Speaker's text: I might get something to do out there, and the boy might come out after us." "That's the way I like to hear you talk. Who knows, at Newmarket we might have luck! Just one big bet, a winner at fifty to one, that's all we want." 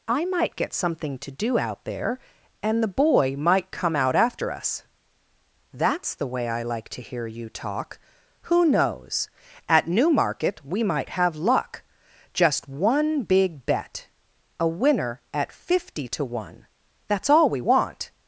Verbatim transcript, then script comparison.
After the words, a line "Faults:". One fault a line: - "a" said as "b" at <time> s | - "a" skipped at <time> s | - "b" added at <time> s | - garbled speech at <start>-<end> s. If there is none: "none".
I might get something to do out there, and the boy might come out after us." "That's the way I like to hear you talk. Who knows, at Newmarket we might have luck! Just one big bet, a winner at fifty to one, that's all we want."
Faults:
none